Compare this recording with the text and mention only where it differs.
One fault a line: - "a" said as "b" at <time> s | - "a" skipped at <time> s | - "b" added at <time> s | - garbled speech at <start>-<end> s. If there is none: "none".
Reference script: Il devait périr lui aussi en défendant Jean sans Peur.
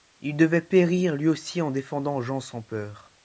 none